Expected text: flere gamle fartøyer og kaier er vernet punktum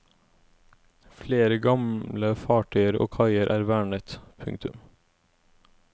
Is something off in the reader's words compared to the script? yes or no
no